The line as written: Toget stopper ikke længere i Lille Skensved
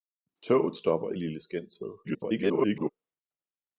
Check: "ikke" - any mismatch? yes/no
yes